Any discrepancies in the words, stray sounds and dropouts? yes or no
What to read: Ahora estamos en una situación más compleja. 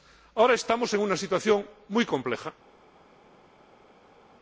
yes